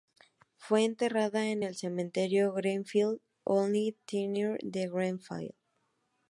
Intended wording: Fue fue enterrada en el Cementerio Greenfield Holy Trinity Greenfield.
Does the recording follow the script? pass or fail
fail